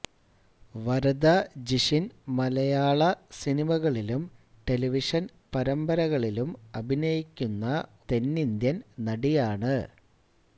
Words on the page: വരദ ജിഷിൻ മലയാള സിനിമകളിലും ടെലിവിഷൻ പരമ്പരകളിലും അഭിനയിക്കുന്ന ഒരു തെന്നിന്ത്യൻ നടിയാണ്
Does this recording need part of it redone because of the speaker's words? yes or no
yes